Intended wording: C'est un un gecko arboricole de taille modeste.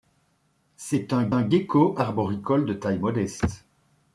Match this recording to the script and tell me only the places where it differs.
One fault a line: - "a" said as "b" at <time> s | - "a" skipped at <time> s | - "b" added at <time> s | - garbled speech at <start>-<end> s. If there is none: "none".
none